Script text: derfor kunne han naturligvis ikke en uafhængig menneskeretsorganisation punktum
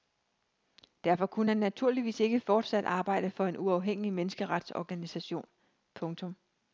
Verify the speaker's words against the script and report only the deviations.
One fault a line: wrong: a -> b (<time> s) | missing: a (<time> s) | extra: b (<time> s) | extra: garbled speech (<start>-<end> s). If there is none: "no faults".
extra: fortsat arbejde for (2.4 s)